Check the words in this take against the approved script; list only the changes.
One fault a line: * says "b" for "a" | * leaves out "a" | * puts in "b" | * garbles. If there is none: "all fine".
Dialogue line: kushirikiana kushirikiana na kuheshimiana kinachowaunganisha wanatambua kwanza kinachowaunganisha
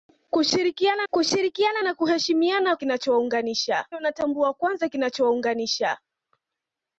all fine